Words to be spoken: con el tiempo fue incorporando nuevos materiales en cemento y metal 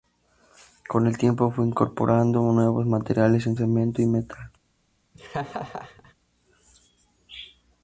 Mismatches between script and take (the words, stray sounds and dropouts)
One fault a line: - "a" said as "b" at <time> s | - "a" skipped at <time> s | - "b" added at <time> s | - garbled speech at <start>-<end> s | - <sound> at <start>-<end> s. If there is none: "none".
- laugh at 5.1-6.1 s